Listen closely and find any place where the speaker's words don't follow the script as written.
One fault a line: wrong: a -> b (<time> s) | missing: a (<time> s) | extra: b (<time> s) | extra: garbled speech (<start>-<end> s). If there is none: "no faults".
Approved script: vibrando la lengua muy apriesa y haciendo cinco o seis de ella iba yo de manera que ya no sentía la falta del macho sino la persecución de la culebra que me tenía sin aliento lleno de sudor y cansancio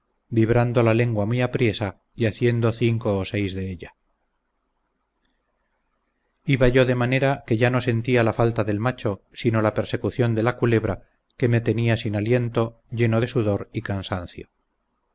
no faults